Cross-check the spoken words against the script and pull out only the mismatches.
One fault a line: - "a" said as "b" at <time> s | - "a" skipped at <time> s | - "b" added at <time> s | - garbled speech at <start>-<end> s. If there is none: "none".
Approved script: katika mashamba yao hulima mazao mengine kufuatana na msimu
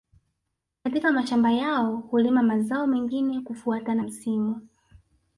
- "na" skipped at 4.0 s